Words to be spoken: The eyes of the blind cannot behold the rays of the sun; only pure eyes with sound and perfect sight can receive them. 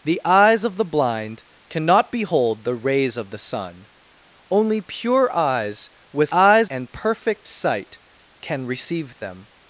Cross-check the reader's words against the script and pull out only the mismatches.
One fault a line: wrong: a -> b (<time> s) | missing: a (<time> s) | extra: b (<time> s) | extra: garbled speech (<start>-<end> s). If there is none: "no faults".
wrong: sound -> eyes (6.3 s)